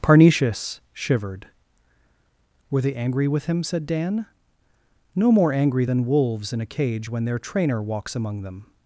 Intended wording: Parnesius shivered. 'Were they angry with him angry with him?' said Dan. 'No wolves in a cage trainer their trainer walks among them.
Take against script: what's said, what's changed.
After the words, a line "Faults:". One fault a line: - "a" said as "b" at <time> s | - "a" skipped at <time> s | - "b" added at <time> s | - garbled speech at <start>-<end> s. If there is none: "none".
Parnesius shivered. 'Were they angry with him?' said Dan. 'No more angry than wolves in a cage when their trainer walks among them.
Faults:
- "angry with him said Dan No" said as "said Dan No more angry than" at 3.6 s
- "trainer" said as "when" at 7.1 s